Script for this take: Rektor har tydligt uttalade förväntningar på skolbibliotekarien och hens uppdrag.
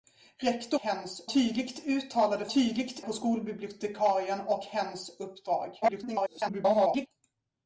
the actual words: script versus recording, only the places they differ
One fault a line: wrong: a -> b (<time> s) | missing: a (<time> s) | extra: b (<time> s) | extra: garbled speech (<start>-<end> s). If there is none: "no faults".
wrong: har -> hens (0.8 s)
wrong: förväntningar -> tydligt (2.5 s)
extra: garbled speech (5.8-7.1 s)